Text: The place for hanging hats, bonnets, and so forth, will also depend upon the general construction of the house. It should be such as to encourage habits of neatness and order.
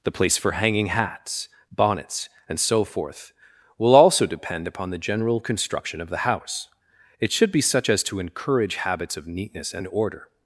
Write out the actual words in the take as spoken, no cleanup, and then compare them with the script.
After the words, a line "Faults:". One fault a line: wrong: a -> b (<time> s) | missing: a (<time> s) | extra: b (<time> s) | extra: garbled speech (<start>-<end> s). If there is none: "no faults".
The place for hanging hats, bonnets, and so forth, will also depend upon the general construction of the house. It should be such as to encourage habits of neatness and order.
Faults:
no faults